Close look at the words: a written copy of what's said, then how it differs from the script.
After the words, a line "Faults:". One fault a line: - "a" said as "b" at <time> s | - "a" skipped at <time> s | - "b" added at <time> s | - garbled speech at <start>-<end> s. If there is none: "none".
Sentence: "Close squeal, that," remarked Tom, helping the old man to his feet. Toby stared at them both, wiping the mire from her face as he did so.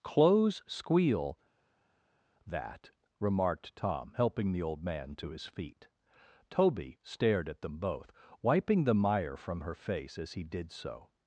"Close squeal, that," remarked Tom, helping the old man to his feet. Toby stared at them both, wiping the mire from her face as he did so.
Faults:
none